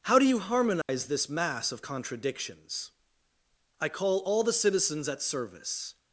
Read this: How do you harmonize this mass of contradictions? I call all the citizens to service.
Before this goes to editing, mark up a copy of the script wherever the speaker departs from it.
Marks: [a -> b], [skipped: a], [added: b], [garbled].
How do you harmonize this mass of contradictions? I call all the citizens [to -> at] service.